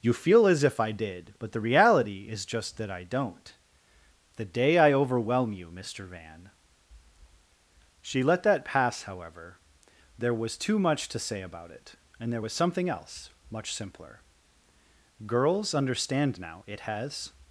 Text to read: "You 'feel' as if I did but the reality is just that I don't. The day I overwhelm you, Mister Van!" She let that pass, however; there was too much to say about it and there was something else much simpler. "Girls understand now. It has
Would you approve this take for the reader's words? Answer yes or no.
yes